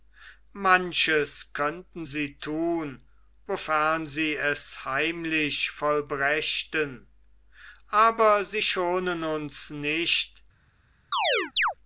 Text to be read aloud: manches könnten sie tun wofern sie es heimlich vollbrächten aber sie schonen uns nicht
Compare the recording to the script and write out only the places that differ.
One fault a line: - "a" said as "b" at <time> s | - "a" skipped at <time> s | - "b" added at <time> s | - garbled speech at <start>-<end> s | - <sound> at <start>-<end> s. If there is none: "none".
- chirp at 11.1-11.7 s